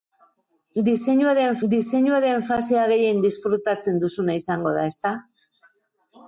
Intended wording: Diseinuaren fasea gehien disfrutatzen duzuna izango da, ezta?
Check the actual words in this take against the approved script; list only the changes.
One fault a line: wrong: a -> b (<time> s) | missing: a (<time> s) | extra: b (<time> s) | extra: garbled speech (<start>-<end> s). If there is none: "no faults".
extra: diseinuaren (1.7 s)